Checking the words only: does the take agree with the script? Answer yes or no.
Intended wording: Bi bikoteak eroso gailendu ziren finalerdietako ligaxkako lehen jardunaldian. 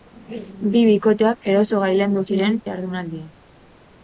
no